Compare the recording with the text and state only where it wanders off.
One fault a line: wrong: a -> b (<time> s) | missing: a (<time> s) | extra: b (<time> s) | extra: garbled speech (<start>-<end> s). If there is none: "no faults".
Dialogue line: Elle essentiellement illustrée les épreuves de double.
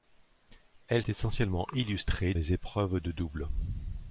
no faults